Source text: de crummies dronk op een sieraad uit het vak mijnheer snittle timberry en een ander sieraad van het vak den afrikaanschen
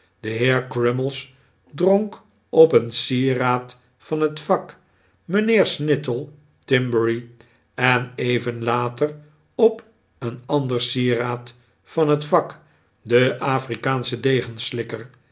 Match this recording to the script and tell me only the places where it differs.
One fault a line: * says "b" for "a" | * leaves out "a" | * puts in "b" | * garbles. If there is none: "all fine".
* puts in "heer"
* says "van" for "uit"
* puts in "even later op"